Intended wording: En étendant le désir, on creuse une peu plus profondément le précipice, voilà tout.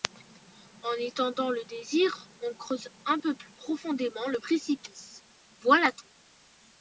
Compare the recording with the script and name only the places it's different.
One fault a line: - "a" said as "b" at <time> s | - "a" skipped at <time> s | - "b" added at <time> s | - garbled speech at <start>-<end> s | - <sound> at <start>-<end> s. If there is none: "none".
- "une" said as "un" at 3.1 s